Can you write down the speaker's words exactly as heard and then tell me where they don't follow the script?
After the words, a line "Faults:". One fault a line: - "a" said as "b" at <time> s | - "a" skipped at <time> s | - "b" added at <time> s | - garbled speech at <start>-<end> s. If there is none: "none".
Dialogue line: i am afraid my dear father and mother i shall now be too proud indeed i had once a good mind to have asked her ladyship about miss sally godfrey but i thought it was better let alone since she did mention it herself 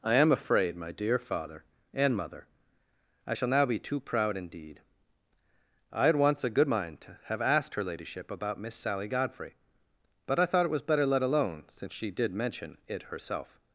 i am afraid my dear father and mother i shall now be too proud indeed i had once a good mind to have asked her ladyship about miss sally godfrey but i thought it was better let alone since she did mention it herself
Faults:
none